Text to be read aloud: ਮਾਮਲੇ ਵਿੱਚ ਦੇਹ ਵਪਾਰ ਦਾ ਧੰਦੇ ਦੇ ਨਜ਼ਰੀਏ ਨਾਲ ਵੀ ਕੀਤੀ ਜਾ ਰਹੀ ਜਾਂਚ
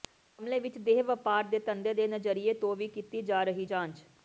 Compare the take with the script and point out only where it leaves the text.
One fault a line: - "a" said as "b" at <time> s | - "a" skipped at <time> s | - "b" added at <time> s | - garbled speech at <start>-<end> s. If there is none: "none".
- "ਦਾ" said as "ਦੇ" at 1.4 s
- "ਨਾਲ" said as "ਤੋਂ" at 2.5 s